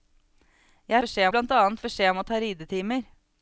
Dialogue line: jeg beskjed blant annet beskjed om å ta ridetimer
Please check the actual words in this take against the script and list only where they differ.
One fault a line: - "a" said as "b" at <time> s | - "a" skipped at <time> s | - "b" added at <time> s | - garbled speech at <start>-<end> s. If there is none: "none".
none